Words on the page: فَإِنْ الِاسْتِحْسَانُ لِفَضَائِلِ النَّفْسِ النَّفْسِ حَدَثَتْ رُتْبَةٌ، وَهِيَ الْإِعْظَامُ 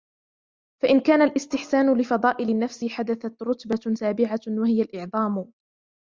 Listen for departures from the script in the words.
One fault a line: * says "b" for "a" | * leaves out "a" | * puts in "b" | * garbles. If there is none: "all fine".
* puts in "كَانَ"
* leaves out "النَّفْسِ"
* puts in "سَابِعَةٌ"